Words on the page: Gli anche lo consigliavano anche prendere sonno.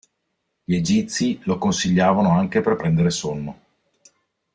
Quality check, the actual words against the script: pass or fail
fail